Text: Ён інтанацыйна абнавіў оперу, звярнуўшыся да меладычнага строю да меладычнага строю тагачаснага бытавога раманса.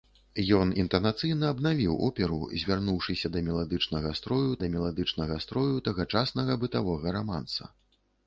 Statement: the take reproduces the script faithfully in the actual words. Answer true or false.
true